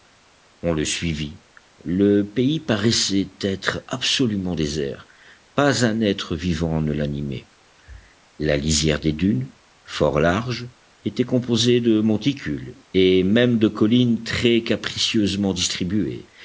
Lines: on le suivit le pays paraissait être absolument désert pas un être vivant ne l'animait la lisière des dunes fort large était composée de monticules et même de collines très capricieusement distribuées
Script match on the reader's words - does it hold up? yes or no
yes